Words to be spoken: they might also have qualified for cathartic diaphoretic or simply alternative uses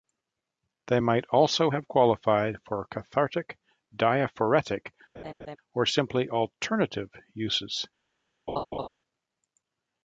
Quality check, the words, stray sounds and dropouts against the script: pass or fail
fail